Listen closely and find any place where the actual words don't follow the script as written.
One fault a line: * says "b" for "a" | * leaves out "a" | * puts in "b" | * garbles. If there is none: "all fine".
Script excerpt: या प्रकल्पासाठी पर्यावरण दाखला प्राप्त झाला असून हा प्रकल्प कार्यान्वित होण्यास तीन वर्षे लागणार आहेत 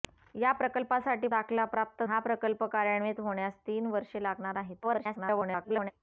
* leaves out "पर्यावरण"
* leaves out "झाला असून"
* garbles